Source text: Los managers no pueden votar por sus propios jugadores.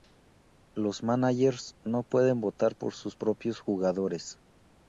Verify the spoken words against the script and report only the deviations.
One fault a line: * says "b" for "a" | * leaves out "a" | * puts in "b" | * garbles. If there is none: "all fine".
all fine